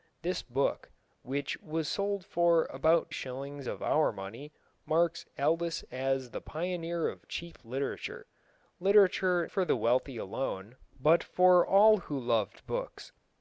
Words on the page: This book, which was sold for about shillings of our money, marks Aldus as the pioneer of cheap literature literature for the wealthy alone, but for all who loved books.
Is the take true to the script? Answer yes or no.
yes